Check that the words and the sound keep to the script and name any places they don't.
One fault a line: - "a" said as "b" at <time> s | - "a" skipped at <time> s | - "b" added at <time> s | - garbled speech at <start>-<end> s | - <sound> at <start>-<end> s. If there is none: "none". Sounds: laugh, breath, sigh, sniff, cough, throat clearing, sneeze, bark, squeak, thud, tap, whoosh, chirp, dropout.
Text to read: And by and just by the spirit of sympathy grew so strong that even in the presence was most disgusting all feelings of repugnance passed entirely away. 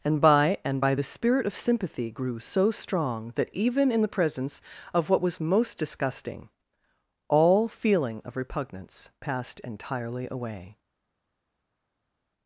- "just" skipped at 0.8 s
- "of what" added at 4.9 s
- "feelings" said as "feeling" at 7.7 s